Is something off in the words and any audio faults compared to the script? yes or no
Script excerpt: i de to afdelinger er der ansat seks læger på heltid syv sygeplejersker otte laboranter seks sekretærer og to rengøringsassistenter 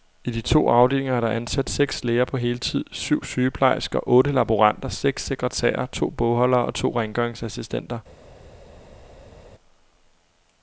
yes